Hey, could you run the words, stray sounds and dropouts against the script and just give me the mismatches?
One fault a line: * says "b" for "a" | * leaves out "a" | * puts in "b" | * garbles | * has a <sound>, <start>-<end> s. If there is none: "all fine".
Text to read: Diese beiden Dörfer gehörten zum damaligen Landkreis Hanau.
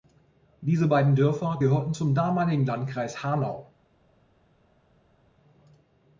all fine